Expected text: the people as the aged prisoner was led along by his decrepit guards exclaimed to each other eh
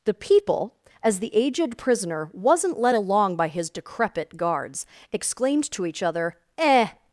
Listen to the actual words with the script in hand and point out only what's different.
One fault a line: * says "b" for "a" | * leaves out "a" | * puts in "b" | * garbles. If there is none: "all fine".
* says "wasn't" for "was"